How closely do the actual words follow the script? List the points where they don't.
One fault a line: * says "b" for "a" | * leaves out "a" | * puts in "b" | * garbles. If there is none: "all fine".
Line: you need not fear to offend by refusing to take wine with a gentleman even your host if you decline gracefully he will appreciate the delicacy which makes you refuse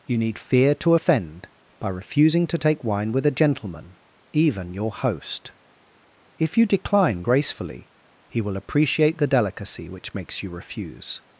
* leaves out "not"